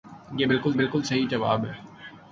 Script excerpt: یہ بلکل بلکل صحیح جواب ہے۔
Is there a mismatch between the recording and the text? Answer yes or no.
no